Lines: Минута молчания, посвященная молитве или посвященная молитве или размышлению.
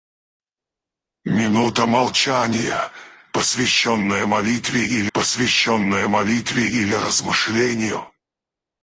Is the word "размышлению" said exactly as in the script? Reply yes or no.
yes